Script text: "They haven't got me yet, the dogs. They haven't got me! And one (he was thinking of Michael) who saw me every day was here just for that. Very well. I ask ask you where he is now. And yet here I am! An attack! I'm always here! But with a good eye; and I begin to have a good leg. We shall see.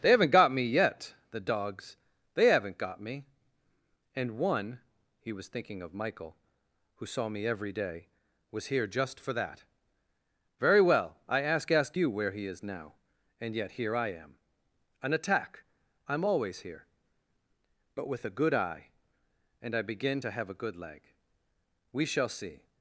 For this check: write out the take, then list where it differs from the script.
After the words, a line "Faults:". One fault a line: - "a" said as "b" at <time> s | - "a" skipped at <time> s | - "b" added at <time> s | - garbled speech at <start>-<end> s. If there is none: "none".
"They haven't got me yet, the dogs. They haven't got me! And one (he was thinking of Michael) who saw me every day was here just for that. Very well. I ask ask you where he is now. And yet here I am! An attack! I'm always here! But with a good eye; and I begin to have a good leg. We shall see.
Faults:
none